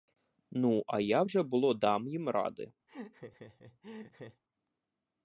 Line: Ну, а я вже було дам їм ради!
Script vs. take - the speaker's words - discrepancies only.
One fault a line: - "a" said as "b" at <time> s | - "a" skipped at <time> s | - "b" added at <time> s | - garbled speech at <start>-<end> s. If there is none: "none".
none